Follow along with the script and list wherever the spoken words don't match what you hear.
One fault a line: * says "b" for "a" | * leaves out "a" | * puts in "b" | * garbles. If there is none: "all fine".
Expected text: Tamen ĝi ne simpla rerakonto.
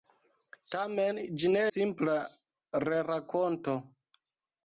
all fine